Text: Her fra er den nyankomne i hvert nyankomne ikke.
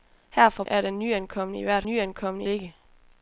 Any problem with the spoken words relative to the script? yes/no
no